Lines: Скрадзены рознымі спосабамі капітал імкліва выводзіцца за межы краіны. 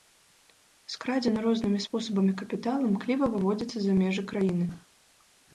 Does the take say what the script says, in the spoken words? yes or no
yes